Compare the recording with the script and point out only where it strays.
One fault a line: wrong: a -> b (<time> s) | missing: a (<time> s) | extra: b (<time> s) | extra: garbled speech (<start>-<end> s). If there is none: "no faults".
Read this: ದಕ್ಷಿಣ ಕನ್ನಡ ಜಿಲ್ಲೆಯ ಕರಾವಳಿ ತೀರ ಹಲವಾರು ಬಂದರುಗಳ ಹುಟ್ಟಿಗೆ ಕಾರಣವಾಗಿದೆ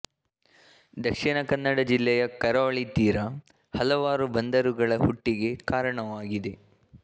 no faults